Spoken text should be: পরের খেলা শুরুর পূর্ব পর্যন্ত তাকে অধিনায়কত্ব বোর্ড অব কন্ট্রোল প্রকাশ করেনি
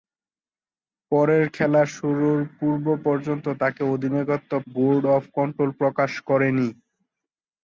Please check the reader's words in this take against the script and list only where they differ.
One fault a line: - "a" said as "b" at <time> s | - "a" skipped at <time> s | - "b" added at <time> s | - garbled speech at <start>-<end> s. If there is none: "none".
none